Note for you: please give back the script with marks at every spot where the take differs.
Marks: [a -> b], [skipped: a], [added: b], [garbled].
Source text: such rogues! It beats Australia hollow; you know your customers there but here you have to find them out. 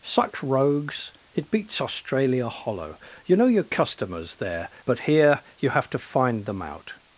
such rogues! It beats Australia hollow; you know your customers there but here you have to find them out.